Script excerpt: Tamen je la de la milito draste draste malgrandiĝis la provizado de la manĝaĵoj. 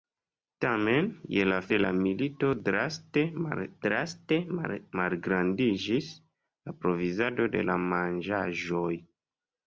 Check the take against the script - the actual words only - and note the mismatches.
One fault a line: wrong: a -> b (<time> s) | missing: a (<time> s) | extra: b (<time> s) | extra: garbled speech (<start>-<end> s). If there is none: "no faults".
no faults